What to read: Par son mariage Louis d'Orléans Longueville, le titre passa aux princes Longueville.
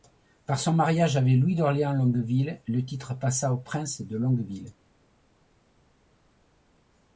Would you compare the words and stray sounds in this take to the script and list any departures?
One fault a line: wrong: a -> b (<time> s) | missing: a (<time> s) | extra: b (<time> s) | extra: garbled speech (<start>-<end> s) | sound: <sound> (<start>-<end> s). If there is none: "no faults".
extra: avec (1.1 s)
extra: de (4.0 s)